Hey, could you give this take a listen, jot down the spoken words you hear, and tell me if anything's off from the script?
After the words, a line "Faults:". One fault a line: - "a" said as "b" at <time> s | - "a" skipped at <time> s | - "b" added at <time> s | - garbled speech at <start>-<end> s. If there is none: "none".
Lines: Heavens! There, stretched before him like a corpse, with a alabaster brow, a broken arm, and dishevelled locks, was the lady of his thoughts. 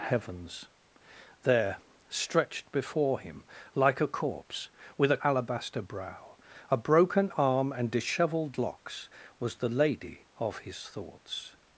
Heavens! There, stretched before him like a corpse, with a alabaster brow, a broken arm, and dishevelled locks, was the lady of his thoughts.
Faults:
none